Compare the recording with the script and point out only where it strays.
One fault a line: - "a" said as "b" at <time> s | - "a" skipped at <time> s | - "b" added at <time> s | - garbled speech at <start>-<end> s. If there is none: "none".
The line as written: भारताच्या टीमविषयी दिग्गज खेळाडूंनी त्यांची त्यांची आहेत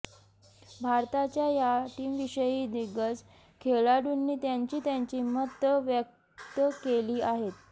- "या" added at 1.5 s
- "मतं व्यक्त केली" added at 5.2 s